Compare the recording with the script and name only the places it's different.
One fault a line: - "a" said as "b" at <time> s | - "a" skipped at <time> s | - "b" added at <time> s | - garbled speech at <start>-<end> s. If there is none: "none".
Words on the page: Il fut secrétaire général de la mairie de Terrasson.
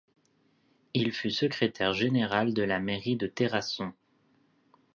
none